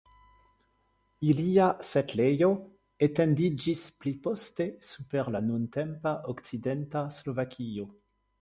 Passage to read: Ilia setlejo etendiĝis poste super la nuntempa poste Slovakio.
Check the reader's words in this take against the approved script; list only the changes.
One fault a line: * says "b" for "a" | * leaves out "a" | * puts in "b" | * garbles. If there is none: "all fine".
* puts in "pli"
* says "okcidenta" for "poste"